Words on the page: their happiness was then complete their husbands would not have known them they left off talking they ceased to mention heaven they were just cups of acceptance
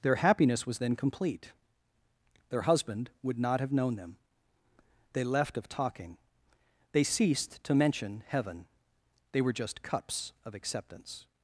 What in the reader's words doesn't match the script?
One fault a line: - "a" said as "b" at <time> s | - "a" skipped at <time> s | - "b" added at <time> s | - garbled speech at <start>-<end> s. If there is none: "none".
- "husbands" said as "husband" at 2.6 s
- "off" said as "of" at 5.6 s